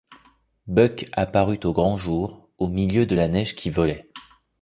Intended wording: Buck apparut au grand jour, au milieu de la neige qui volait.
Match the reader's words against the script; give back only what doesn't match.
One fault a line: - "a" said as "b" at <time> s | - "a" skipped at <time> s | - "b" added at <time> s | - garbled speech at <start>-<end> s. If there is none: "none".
none